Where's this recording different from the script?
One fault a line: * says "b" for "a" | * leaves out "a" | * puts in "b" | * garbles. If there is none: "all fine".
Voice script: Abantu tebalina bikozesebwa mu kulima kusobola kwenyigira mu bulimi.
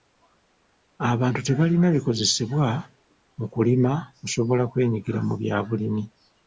* puts in "bya"